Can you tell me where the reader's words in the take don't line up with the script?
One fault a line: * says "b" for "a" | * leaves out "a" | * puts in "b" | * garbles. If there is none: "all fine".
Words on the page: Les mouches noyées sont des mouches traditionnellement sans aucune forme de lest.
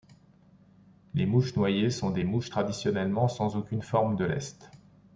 all fine